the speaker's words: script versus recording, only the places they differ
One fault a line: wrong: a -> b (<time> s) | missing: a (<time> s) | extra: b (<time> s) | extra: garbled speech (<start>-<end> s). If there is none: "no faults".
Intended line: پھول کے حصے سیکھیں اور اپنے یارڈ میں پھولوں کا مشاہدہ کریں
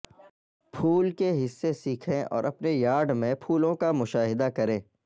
no faults